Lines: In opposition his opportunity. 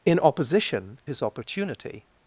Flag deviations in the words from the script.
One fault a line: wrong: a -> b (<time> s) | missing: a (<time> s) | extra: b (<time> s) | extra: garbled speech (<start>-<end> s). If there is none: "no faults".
no faults